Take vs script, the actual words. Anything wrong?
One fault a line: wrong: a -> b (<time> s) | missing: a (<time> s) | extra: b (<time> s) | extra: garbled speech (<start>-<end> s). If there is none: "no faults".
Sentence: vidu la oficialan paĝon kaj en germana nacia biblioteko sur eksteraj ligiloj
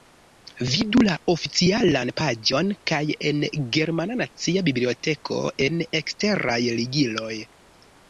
wrong: sur -> en (5.7 s)